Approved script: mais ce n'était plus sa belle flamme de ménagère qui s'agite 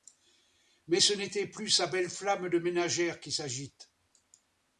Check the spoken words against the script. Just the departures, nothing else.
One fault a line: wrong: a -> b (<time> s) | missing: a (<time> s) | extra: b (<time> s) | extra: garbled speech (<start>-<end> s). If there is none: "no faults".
no faults